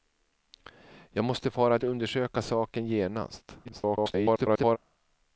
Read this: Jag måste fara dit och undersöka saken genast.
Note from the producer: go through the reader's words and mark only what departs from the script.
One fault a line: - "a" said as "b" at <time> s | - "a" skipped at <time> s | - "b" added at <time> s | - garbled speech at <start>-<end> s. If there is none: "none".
- "dit" skipped at 1.8 s
- garbled speech at 3.6-4.8 s